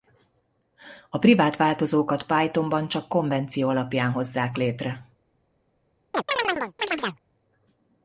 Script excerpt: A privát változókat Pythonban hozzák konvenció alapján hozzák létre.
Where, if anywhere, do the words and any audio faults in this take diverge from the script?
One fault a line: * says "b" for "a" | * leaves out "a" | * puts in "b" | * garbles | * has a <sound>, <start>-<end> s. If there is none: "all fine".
* says "csak" for "hozzák"
* has a chirp, 6.1-7.2 s